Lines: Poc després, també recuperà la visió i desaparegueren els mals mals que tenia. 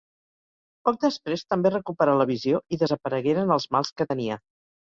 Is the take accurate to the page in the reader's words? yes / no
no